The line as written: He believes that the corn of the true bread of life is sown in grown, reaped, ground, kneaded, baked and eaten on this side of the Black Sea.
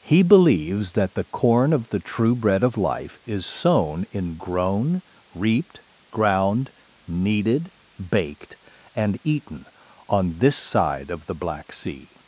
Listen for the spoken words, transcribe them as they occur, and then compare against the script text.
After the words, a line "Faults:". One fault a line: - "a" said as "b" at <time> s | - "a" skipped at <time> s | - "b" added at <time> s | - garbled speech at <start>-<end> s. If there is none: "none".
He believes that the corn of the true bread of life is sown in grown, reaped, ground, kneaded, baked and eaten on this side of the Black Sea.
Faults:
none